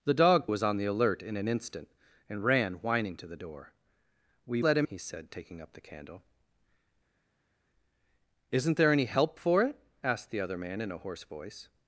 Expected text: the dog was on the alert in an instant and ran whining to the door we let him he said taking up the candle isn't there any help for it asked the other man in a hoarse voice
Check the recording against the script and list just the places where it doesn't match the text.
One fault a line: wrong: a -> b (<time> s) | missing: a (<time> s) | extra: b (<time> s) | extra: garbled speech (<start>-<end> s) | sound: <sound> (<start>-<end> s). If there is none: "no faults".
no faults